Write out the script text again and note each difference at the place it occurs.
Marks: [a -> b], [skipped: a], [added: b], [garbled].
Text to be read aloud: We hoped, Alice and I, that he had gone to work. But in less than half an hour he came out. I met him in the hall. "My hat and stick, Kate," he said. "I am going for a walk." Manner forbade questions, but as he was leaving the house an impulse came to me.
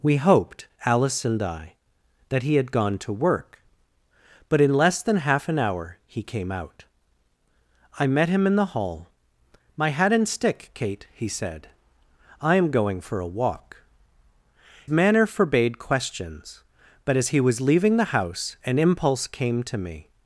We hoped, Alice and I, that he had gone to work. But in less than half an hour he came out. I met him in the hall. "My hat and stick, Kate," he said. "I am going for a walk." Manner forbade questions, but as he was leaving the house an impulse came to me.